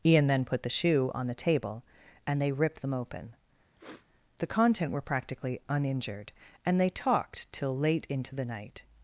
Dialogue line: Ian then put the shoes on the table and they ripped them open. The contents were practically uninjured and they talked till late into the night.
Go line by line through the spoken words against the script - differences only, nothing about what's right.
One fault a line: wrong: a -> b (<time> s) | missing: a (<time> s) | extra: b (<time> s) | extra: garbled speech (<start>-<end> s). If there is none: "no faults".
wrong: shoes -> shoe (0.7 s)
wrong: contents -> content (4.5 s)